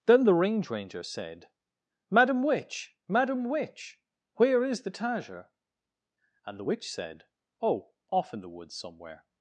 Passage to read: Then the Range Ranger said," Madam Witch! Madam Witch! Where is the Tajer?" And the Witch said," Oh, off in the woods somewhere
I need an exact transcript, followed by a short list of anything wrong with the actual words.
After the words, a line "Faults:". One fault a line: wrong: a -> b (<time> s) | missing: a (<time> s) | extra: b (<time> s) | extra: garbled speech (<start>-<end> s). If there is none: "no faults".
Then the Range Ranger said," Madam Witch! Madam Witch! Where is the Tajer?" And the Witch said," Oh, off in the woods somewhere
Faults:
no faults